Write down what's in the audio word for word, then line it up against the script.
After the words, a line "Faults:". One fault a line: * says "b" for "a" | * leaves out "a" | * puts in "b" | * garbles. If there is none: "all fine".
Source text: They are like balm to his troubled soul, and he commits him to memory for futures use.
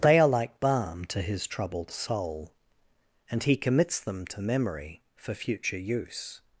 They are like balm to his troubled soul, and he commits them to memory for future use.
Faults:
* says "them" for "him"
* says "future" for "futures"